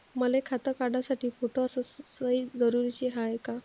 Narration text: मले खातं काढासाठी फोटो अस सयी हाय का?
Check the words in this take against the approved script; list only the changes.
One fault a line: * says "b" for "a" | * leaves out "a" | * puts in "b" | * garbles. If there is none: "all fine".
* puts in "जरुरीची"